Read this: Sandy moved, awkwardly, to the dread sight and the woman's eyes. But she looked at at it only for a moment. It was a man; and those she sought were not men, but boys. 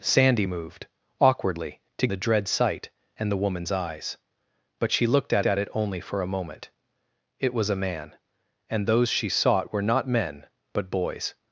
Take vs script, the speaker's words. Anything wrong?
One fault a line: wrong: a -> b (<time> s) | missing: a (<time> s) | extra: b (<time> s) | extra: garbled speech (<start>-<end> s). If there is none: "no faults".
no faults